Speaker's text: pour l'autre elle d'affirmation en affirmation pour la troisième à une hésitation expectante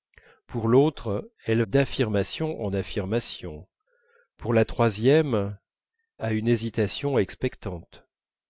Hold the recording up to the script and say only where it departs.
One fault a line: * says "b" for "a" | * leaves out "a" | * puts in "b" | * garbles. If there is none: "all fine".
all fine